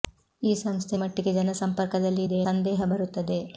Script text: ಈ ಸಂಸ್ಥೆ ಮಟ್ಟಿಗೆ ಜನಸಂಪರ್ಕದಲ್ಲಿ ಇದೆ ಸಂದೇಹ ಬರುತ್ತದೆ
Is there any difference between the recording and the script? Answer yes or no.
no